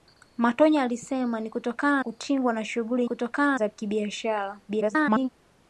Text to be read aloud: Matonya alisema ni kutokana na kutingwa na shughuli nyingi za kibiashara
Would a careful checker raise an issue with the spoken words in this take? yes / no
yes